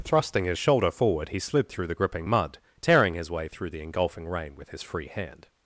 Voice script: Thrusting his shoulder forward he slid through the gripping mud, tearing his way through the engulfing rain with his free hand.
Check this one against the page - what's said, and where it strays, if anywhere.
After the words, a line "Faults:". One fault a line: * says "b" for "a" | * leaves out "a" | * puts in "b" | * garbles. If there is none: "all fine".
Thrusting his shoulder forward he slid through the gripping mud, tearing his way through the engulfing rain with his free hand.
Faults:
all fine